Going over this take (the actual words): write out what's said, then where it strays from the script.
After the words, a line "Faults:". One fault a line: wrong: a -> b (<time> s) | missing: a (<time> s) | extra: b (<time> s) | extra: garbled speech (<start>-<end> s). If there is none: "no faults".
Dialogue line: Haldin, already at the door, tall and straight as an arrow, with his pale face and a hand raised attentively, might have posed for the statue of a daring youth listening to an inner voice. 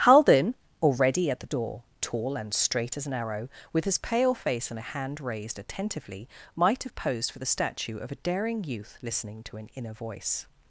Haldin, already at the door, tall and straight as an arrow, with his pale face and a hand raised attentively, might have posed for the statue of a daring youth listening to an inner voice.
Faults:
no faults